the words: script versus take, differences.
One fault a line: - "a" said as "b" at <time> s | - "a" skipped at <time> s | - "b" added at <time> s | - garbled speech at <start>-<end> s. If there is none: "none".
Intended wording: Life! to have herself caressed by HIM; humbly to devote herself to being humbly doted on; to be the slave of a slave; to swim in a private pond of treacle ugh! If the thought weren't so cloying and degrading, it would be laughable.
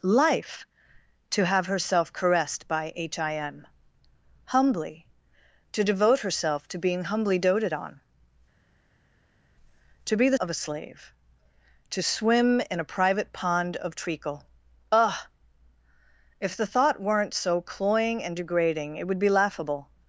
- "slave" skipped at 10.4 s